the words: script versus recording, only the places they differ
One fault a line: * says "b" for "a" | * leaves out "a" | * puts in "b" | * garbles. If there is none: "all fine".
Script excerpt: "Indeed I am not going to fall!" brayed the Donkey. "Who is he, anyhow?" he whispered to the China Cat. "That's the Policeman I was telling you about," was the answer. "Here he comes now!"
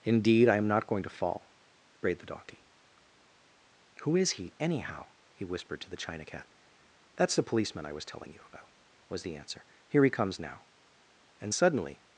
* puts in "And suddenly"